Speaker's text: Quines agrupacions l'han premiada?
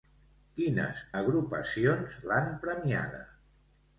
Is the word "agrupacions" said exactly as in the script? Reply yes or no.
yes